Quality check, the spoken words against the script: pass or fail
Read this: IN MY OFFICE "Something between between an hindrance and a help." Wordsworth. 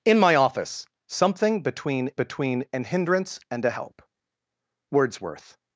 pass